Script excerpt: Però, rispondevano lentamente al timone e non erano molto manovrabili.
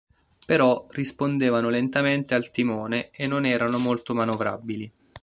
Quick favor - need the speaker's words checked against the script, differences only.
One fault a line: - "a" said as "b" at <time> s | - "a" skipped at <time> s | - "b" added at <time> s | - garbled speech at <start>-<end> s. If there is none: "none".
none